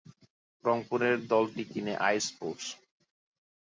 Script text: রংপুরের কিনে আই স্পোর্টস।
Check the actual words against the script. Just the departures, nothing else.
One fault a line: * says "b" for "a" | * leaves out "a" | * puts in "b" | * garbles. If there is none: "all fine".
* puts in "দলটি"